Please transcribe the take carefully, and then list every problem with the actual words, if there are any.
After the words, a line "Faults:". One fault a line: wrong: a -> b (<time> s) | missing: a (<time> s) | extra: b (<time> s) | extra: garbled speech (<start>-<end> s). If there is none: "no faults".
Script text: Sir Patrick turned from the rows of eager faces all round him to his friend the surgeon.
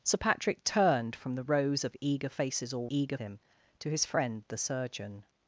Sir Patrick turned from the rows of eager faces all eager him to his friend the surgeon.
Faults:
wrong: round -> eager (2.9 s)